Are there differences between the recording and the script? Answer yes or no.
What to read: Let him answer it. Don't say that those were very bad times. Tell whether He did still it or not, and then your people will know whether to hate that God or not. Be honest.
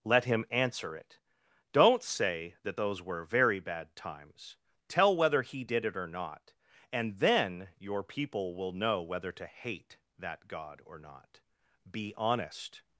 yes